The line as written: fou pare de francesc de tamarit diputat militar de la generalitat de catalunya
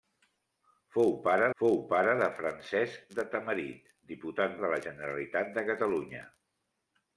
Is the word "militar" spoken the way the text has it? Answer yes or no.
no